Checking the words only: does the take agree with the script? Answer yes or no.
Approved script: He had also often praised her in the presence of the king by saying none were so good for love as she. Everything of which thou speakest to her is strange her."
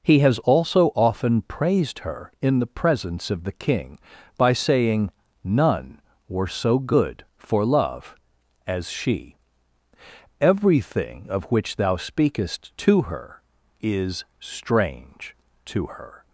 no